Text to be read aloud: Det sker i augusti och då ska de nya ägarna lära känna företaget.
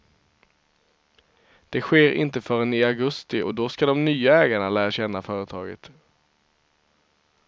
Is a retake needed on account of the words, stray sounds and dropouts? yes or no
yes